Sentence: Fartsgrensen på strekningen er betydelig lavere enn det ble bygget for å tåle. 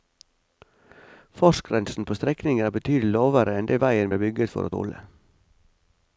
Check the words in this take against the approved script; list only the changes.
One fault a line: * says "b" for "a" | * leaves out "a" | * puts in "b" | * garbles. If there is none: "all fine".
* puts in "veien"